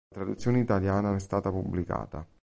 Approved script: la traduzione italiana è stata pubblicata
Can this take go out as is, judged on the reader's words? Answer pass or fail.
pass